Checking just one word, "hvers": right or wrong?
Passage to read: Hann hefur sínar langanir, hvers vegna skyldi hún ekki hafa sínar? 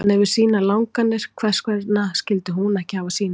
right